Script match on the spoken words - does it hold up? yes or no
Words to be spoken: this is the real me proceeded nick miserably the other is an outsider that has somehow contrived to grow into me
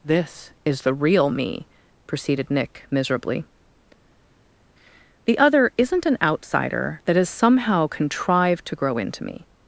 no